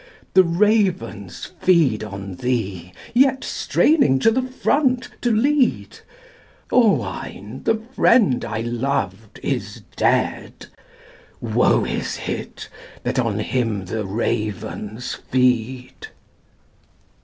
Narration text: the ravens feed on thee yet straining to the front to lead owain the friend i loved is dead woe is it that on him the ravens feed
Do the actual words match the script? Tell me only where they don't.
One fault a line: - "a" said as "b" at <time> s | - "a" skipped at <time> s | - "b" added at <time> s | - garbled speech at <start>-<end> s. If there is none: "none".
none